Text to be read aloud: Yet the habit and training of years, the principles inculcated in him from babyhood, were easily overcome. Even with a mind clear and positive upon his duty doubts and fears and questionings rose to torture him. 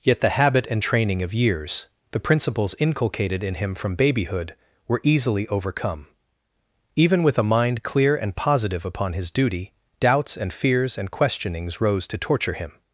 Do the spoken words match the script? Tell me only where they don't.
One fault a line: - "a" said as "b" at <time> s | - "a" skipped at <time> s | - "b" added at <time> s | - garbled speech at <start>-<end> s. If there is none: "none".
none